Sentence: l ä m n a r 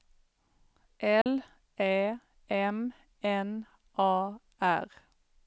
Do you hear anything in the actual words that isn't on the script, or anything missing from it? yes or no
no